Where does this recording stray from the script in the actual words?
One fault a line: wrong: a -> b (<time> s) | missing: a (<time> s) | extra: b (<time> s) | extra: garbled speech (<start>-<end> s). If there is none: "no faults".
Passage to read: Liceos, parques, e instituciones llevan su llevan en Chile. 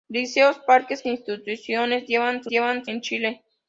no faults